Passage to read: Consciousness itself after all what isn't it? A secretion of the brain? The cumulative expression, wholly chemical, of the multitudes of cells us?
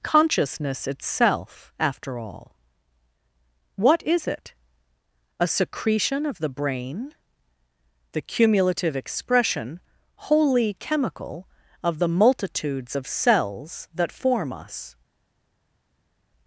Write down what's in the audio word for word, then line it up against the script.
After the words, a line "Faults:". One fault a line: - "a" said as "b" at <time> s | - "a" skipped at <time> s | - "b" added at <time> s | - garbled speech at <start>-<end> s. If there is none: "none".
Consciousness itself after all what is it? A secretion of the brain? The cumulative expression, wholly chemical, of the multitudes of cells that form us?
Faults:
- "isn't" said as "is" at 4.0 s
- "that form" added at 13.9 s